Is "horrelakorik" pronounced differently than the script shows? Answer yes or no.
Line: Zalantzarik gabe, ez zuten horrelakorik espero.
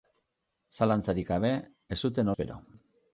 yes